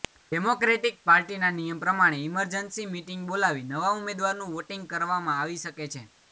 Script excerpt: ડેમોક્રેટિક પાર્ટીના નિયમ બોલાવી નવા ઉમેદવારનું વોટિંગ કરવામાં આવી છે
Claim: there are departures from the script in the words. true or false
true